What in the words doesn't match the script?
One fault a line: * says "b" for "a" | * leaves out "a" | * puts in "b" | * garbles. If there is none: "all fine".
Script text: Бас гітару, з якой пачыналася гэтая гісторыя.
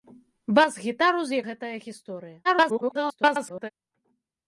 * leaves out "якой пачыналася"
* garbles